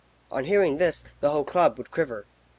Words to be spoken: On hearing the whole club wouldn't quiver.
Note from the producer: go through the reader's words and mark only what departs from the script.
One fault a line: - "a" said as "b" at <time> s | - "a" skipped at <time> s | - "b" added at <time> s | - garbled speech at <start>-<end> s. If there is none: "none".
- "this" added at 0.8 s
- "wouldn't" said as "would" at 1.8 s